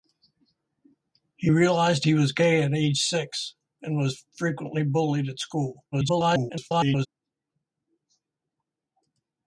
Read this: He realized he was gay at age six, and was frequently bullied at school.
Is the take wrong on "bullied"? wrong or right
right